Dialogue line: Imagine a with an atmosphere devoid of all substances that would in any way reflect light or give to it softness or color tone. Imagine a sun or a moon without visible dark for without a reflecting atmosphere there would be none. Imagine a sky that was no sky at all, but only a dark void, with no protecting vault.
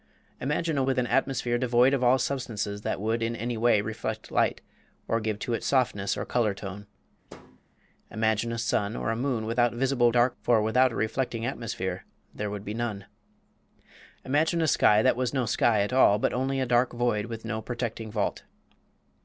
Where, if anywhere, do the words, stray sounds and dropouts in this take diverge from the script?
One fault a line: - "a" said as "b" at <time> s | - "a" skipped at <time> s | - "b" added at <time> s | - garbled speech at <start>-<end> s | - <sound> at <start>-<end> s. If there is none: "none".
- thud at 7.3-7.6 s